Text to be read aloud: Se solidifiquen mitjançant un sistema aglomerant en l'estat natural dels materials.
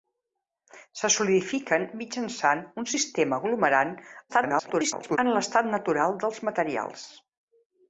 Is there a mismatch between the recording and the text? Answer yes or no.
yes